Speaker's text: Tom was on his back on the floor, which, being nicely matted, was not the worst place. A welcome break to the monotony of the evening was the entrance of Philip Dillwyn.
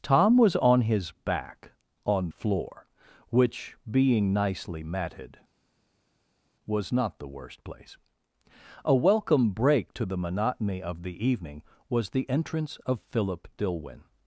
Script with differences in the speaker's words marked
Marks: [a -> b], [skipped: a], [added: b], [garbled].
Tom was on his back on [skipped: the] floor, which, being nicely matted, was not the worst place. A welcome break to the monotony of the evening was the entrance of Philip Dillwyn.